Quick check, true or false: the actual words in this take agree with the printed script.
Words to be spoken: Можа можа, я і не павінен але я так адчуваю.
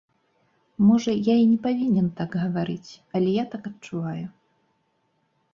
false